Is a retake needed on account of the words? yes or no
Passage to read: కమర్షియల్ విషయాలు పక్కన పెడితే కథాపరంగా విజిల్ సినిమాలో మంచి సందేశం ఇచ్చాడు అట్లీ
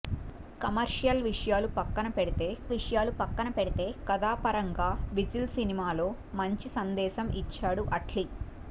yes